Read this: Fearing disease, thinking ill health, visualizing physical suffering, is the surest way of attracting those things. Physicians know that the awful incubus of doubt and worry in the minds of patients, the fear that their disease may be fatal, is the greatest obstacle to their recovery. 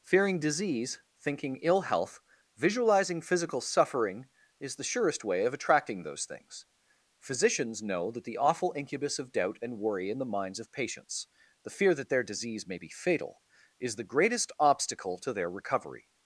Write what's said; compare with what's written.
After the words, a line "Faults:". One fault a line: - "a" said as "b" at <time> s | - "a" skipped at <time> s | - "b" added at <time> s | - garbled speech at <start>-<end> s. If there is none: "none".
Fearing disease, thinking ill health, visualizing physical suffering, is the surest way of attracting those things. Physicians know that the awful incubus of doubt and worry in the minds of patients, the fear that their disease may be fatal, is the greatest obstacle to their recovery.
Faults:
none